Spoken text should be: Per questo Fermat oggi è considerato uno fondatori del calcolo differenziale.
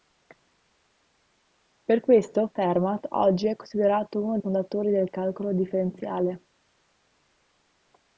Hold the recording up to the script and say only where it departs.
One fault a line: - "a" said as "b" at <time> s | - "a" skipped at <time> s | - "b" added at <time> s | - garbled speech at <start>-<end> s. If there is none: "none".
none